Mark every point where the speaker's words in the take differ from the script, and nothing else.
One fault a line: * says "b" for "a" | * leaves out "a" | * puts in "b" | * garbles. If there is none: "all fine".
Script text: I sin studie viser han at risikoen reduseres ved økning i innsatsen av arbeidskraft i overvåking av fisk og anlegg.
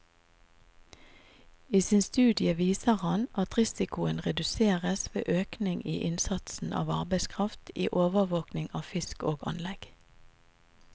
all fine